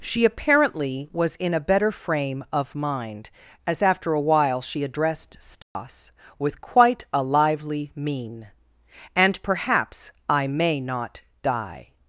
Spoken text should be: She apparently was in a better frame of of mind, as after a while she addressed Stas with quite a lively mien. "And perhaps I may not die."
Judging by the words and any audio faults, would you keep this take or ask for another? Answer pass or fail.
fail